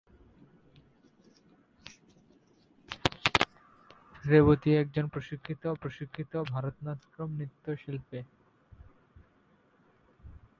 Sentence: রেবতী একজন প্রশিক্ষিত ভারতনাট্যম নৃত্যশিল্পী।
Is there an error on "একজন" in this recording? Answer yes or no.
no